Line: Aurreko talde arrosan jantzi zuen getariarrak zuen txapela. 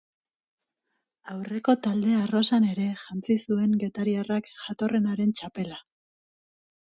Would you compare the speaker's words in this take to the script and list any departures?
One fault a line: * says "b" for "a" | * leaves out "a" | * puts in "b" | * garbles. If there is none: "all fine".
* puts in "ere"
* says "jatorrenaren" for "zuen"